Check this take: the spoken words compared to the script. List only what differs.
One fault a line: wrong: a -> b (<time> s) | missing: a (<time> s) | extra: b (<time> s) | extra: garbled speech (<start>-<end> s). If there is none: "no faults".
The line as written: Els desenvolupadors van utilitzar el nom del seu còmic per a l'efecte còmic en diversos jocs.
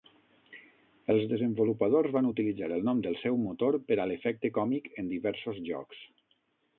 wrong: còmic -> motor (3.5 s)